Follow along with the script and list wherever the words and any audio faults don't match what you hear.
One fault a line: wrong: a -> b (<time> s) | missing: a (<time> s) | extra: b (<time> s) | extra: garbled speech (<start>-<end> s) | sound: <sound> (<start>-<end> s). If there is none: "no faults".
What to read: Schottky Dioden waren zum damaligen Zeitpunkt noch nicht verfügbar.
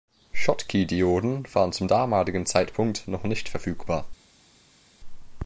no faults